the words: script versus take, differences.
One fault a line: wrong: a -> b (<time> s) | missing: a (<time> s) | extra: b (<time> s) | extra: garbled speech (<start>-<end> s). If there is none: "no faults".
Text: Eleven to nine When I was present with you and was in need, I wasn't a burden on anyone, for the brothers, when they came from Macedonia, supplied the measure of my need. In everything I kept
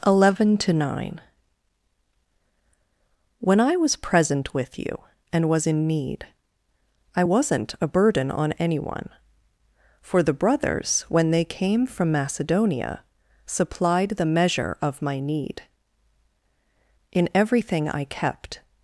no faults